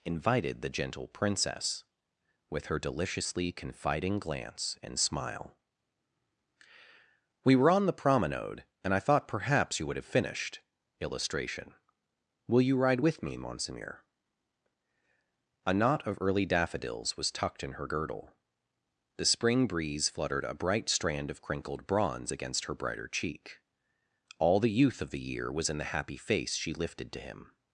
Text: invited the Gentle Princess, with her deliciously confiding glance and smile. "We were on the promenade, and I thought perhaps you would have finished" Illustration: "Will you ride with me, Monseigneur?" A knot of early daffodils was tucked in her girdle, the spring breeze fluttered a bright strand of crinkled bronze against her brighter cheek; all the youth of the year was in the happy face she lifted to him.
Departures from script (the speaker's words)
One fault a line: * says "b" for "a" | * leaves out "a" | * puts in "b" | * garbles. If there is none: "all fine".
all fine